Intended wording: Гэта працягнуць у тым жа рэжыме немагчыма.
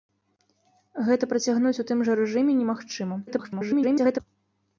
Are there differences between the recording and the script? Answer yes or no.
yes